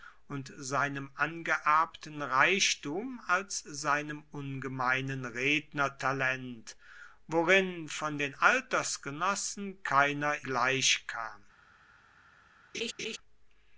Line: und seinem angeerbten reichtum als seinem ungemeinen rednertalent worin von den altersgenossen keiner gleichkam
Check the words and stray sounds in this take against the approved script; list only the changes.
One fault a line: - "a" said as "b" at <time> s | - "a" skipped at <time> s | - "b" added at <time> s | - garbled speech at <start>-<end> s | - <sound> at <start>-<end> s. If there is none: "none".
- laugh at 12.7-13.2 s